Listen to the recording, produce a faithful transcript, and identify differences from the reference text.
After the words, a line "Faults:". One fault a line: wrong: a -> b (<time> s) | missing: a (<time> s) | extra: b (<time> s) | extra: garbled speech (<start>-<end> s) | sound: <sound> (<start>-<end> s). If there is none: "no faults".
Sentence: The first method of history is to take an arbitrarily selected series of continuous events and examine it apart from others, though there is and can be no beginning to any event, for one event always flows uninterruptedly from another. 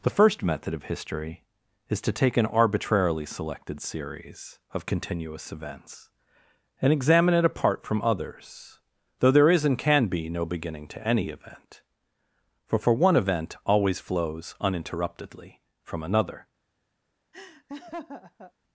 The first method of history is to take an arbitrarily selected series of continuous events and examine it apart from others, though there is and can be no beginning to any event, for for one event always flows uninterruptedly from another.
Faults:
extra: for (12.8 s)
sound: laugh (17.3-18.5 s)